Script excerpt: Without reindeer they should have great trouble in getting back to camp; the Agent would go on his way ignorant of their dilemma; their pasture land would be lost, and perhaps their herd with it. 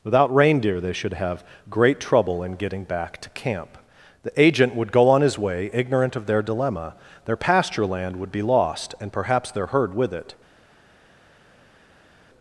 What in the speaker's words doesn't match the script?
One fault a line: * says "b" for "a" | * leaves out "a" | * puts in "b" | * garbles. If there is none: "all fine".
all fine